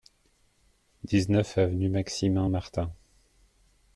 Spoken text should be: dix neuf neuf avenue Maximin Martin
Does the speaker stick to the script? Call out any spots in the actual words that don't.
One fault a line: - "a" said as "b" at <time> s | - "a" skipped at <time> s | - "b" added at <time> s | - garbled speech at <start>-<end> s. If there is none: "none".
- "neuf" skipped at 1.6 s